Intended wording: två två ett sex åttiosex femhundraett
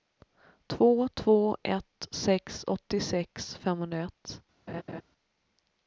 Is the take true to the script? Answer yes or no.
yes